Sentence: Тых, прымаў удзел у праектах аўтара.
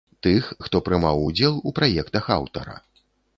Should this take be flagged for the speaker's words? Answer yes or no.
yes